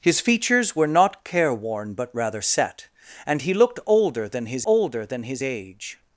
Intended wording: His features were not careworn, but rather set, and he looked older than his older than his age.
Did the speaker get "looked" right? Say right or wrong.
right